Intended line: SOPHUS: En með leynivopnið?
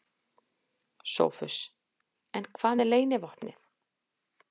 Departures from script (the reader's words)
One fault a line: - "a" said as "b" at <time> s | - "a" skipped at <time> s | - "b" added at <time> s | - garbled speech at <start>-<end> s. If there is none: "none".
- "hvað" added at 2.6 s